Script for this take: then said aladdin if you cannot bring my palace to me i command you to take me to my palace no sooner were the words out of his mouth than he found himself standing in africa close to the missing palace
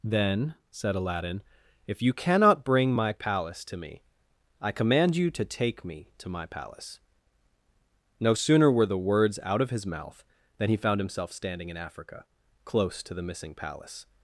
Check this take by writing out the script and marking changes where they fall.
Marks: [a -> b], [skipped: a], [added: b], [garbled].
then said aladdin if you cannot bring my palace to me i command you to take me to my palace no sooner were the words out of his mouth than he found himself standing in africa close to the missing palace